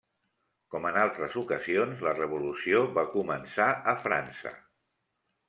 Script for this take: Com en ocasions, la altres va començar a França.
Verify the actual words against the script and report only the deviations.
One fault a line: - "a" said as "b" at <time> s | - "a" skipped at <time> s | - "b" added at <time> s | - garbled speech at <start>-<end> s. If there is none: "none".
- "altres" added at 1.0 s
- "altres" said as "revolució" at 2.2 s